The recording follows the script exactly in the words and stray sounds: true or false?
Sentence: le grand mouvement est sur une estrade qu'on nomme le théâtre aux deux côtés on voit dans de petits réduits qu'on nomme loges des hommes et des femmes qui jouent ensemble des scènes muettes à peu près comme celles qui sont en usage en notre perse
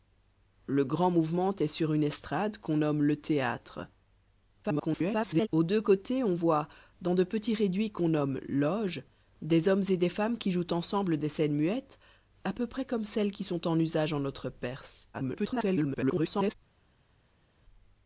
false